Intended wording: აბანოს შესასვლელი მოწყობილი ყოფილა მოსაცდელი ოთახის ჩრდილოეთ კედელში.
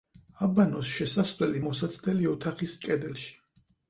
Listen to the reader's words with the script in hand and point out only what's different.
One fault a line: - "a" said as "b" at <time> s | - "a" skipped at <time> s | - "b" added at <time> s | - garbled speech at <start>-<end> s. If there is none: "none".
- "მოწყობილი ყოფილა" skipped at 1.6 s
- "ჩრდილოეთ" skipped at 2.8 s